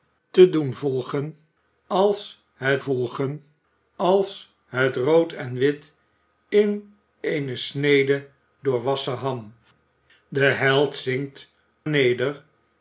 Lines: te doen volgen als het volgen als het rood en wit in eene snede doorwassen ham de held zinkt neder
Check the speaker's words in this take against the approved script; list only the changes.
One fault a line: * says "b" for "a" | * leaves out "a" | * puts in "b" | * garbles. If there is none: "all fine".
all fine